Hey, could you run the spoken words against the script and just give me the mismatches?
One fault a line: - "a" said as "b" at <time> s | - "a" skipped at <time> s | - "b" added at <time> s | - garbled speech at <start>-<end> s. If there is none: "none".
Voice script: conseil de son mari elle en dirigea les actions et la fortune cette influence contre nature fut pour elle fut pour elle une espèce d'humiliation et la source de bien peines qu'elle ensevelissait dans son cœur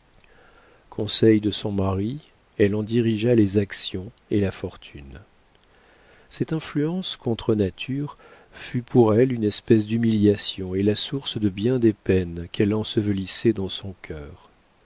- "fut pour elle" skipped at 9.3 s
- "des" added at 11.8 s